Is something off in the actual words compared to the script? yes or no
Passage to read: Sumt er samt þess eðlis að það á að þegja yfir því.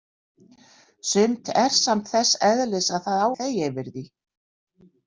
no